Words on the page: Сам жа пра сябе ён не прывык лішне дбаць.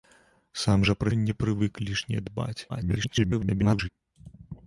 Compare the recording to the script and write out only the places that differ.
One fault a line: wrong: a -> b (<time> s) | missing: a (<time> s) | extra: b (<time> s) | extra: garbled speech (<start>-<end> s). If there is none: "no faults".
missing: сябе (1.1 s)
extra: garbled speech (2.7-3.9 s)